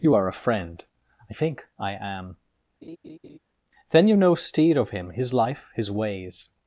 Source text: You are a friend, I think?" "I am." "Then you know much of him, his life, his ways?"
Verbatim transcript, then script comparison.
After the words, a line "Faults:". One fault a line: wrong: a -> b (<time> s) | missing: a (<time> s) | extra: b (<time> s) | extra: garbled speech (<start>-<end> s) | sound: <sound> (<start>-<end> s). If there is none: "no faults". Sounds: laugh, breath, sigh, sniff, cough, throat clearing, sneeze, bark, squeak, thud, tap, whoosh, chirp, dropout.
You are a friend, I think?" "I am." "Then you know steed of him, his life, his ways?"
Faults:
sound: laugh (2.8-3.4 s)
wrong: much -> steed (4.4 s)